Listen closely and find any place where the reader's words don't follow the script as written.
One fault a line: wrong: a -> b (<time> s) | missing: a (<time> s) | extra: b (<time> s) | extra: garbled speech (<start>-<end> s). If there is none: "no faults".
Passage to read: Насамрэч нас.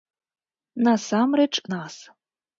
no faults